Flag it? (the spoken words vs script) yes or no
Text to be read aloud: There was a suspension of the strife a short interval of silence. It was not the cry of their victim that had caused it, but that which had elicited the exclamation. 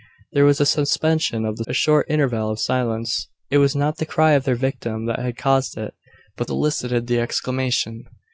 yes